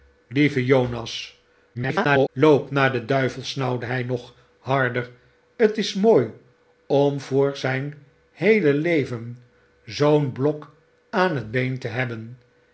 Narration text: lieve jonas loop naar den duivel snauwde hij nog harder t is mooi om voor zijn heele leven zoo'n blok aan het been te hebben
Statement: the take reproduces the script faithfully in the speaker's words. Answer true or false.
false